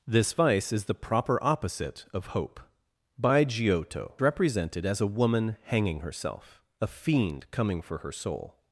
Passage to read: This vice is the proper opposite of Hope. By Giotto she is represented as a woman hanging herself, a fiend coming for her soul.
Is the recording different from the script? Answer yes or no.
yes